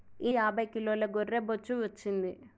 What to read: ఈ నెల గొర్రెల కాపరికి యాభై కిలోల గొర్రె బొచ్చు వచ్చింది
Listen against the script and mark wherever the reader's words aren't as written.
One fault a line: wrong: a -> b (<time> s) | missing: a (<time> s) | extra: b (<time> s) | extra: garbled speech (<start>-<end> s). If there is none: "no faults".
missing: నెల గొర్రెల కాపరికి (0.3 s)